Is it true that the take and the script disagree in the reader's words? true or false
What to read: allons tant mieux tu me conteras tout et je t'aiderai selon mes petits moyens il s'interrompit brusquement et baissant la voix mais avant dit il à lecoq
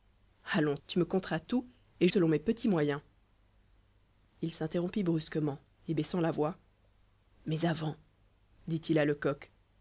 true